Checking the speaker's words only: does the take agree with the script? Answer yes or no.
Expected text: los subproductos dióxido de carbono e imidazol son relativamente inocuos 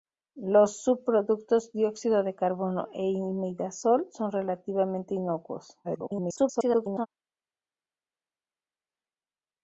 no